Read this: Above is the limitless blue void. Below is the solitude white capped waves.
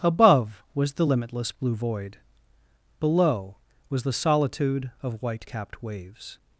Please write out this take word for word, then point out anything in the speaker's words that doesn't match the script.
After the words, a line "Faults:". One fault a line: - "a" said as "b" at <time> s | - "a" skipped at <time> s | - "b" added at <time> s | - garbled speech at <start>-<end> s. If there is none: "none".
Above was the limitless blue void. Below was the solitude of white capped waves.
Faults:
- "is" said as "was" at 0.7 s
- "is" said as "was" at 3.9 s
- "of" added at 5.0 s